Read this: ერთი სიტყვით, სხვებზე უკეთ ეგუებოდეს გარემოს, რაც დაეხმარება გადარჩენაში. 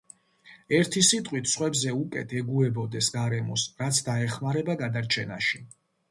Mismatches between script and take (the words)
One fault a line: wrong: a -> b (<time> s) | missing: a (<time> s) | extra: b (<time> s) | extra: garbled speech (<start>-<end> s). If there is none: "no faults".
no faults